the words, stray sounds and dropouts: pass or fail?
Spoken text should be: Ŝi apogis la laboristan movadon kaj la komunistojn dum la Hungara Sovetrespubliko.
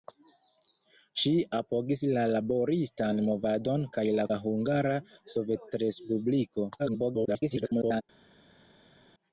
fail